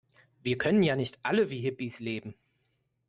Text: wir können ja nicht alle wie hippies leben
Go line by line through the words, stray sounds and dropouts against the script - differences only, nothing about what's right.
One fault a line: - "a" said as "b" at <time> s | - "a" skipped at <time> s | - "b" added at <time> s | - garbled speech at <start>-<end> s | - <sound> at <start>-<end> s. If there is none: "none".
none